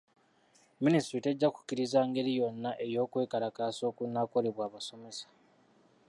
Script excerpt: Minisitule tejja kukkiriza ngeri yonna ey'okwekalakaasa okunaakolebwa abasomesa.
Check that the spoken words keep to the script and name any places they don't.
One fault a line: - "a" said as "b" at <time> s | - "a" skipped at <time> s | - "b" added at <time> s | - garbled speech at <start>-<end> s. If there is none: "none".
none